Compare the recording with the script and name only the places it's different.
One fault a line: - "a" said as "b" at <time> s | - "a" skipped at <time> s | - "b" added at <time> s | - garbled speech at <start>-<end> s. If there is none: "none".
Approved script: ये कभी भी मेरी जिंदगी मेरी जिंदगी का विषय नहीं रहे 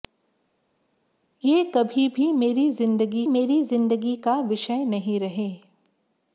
none